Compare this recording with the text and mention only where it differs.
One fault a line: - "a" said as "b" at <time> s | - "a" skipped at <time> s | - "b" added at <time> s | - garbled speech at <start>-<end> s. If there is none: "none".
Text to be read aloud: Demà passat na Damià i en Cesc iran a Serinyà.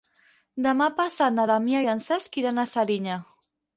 none